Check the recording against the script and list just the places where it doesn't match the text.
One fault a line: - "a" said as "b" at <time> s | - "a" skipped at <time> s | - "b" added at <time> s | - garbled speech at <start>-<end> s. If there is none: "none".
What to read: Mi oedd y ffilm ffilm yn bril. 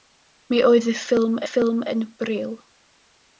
none